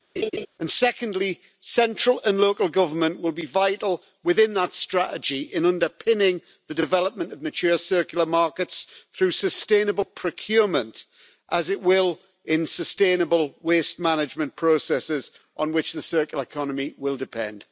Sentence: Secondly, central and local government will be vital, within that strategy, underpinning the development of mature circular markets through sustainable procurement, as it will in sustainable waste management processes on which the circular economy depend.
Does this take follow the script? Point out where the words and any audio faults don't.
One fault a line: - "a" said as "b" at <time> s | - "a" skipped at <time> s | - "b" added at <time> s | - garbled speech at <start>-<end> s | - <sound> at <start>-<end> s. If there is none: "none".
- laugh at 0.2-0.5 s
- "in" added at 5.5 s
- "will" added at 17.0 s